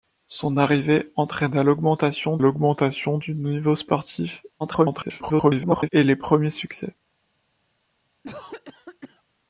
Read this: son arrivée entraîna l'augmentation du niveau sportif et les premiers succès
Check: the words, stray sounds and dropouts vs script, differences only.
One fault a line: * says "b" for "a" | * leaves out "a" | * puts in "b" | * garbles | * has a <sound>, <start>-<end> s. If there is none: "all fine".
* puts in "l'augmentation"
* garbles
* has a cough, 8.2-9.2 s